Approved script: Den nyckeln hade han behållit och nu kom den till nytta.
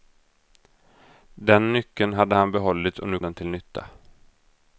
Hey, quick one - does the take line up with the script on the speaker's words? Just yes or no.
no